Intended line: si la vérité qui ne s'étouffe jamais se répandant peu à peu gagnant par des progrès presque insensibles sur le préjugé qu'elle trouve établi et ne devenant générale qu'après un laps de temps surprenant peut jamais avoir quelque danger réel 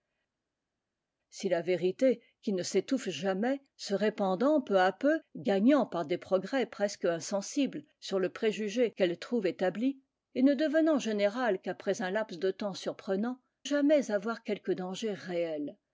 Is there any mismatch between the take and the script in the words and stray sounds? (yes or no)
yes